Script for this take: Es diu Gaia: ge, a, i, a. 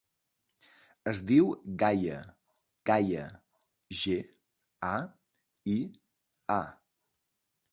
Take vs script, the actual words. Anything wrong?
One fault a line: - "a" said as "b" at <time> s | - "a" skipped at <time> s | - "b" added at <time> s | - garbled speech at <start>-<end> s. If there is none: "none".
- "Gaia" added at 2.9 s